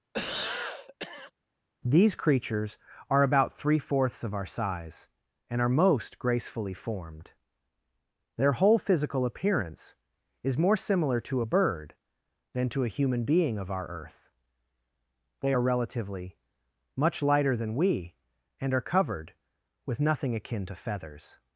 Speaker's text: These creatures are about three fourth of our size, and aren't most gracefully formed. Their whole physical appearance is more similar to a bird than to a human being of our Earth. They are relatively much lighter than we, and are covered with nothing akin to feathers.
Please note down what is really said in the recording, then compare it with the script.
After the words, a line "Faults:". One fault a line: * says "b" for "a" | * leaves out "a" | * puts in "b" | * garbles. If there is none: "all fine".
These creatures are about three fourths of our size, and are most gracefully formed. Their whole physical appearance is more similar to a bird than to a human being of our Earth. They are relatively much lighter than we, and are covered with nothing akin to feathers.
Faults:
* says "fourths" for "fourth"
* says "are" for "aren't"